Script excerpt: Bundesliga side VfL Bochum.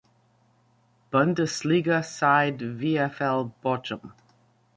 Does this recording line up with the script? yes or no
yes